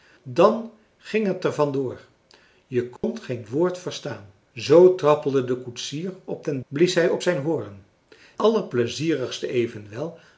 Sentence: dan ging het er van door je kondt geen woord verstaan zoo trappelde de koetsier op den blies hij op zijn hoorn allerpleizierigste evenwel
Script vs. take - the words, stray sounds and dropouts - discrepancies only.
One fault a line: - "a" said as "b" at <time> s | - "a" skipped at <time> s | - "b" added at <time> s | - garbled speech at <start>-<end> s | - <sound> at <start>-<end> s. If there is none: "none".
- dropout at 3.0-3.0 s